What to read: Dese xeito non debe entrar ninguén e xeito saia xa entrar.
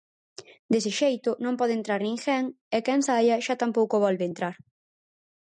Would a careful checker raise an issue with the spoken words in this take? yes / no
yes